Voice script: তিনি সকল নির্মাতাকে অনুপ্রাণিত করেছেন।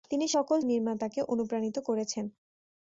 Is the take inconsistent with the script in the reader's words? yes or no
no